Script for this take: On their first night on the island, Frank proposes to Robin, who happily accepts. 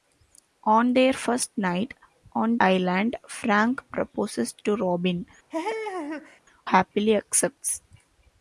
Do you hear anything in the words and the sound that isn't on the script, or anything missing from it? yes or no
yes